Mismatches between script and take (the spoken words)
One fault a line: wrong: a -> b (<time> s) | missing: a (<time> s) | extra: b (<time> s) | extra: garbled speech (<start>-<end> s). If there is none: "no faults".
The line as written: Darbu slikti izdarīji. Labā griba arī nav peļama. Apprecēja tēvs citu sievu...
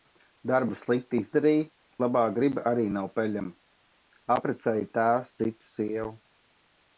no faults